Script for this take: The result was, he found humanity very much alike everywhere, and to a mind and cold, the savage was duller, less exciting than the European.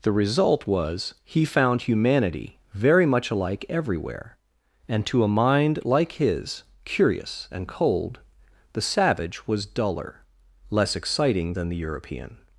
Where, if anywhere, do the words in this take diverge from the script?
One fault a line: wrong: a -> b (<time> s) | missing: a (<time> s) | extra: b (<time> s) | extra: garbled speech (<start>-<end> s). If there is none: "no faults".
extra: like his curious (5.8 s)